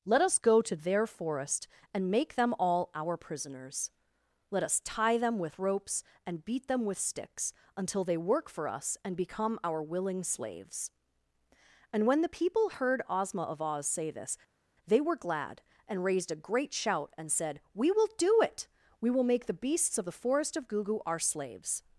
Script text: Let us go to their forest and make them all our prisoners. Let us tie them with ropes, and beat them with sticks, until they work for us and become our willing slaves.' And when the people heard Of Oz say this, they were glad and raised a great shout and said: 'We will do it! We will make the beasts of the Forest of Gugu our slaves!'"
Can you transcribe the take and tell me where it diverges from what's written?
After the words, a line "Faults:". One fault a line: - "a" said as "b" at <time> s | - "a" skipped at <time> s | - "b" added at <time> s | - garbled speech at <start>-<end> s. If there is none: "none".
Let us go to their forest and make them all our prisoners. Let us tie them with ropes, and beat them with sticks, until they work for us and become our willing slaves.' And when the people heard Ozma of Oz say this, they were glad and raised a great shout and said: 'We will do it! We will make the beasts of the Forest of Gugu our slaves!'"
Faults:
- "Ozma" added at 13.1 s